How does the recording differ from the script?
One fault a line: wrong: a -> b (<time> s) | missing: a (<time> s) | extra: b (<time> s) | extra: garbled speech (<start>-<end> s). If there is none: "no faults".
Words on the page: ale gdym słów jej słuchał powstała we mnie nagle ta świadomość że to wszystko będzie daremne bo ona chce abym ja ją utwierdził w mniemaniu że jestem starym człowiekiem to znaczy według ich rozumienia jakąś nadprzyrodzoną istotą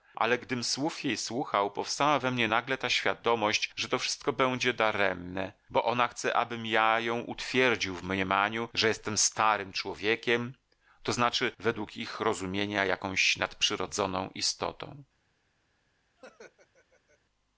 no faults